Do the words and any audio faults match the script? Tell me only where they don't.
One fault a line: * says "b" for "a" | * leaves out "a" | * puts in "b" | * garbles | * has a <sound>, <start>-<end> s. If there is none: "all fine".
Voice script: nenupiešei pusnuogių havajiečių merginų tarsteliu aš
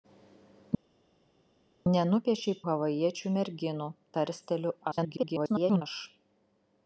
* leaves out "pusnuogių"
* garbles